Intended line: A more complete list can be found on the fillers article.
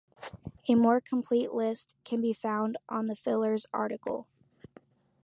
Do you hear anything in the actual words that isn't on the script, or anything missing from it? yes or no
no